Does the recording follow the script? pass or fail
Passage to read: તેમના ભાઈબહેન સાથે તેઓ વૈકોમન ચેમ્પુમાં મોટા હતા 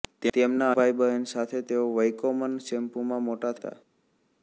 pass